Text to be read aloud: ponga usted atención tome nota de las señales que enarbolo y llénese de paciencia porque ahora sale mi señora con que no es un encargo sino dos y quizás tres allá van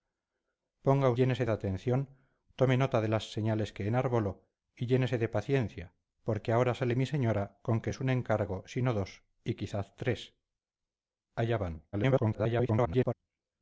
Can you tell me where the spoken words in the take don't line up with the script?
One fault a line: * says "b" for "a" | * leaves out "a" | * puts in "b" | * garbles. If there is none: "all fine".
* says "llénese" for "usted"
* leaves out "no"
* garbles